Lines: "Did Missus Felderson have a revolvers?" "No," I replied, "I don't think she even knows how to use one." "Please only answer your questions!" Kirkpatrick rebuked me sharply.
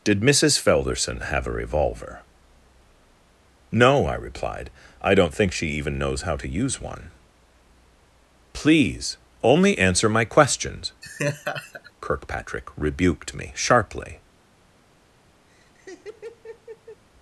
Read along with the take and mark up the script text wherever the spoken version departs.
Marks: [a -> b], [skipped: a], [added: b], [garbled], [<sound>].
"Did Missus Felderson have a [revolvers?" -> revolver] "No," I replied, "I don't think she even knows how to use one." "Please only answer [your -> my] questions!" [laugh] Kirkpatrick rebuked me sharply. [laugh]